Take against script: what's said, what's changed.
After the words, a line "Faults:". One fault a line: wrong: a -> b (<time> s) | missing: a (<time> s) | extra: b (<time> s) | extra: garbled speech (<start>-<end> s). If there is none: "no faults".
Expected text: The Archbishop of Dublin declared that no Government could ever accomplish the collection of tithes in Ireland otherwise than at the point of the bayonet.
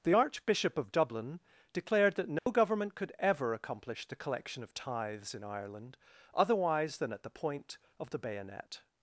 The Archbishop of Dublin declared that no Government could ever accomplish the collection of tithes in Ireland otherwise than at the point of the bayonet.
Faults:
no faults